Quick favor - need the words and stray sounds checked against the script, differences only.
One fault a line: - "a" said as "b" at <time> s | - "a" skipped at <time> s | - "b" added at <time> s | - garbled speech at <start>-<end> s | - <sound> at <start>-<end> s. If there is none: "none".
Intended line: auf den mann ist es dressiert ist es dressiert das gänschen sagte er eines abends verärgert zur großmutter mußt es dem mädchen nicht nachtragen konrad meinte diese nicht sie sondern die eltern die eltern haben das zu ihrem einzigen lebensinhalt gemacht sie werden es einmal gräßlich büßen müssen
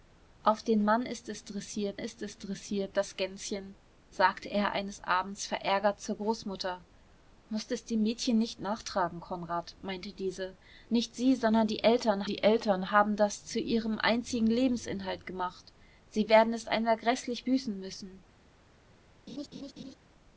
- laugh at 19.3-20.0 s